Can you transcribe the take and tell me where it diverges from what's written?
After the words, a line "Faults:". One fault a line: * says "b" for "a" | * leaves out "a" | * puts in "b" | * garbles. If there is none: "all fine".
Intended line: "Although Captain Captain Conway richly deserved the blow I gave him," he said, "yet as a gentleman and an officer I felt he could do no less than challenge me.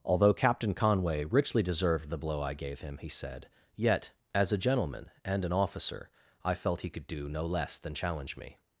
"Although Captain Conway richly deserved the blow I gave him," he said, "yet as a gentleman and an officer I felt he could do no less than challenge me.
Faults:
* leaves out "Captain"